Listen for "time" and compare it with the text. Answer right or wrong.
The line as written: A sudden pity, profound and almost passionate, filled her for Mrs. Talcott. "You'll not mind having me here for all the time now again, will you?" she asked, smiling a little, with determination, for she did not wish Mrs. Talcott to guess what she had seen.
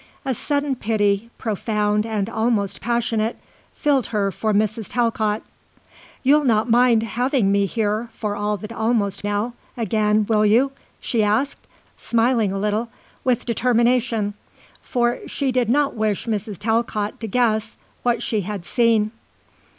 wrong